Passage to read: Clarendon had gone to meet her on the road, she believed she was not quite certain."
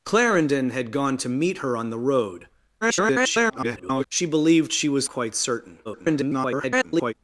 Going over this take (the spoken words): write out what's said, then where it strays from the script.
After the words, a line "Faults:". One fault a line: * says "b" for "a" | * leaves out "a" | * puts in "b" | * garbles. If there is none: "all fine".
Clarendon had gone to meet her on the road, [garbled] she believed she was quite certain." [garbled]
Faults:
* garbles
* leaves out "not"
* garbles